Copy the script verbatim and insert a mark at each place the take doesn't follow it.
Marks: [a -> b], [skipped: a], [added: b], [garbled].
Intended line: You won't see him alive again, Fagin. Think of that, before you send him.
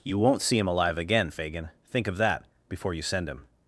You won't see him alive again, Fagin. Think of that, before you send him.